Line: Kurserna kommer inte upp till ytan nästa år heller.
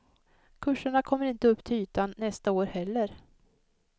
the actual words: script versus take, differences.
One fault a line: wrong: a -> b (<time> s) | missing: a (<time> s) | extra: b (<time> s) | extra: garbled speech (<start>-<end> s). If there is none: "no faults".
no faults